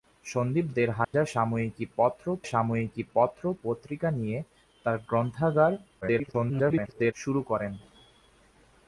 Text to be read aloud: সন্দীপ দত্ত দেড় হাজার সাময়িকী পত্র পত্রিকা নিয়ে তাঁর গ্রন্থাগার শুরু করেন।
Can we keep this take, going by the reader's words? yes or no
no